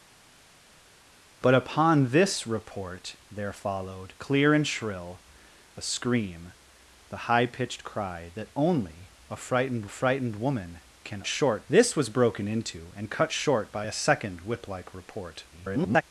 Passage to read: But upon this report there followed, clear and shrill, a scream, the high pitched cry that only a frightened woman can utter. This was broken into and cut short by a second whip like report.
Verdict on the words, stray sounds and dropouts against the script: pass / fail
fail